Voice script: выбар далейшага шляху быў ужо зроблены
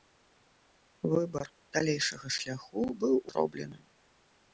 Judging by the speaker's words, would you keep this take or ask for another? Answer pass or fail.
fail